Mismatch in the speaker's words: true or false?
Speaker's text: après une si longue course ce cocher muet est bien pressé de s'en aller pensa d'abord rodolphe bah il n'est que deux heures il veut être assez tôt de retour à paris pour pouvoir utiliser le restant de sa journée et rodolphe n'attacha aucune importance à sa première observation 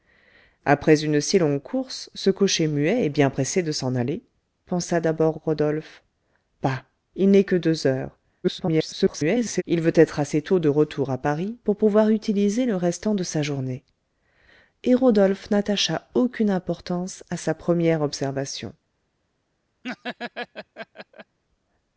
true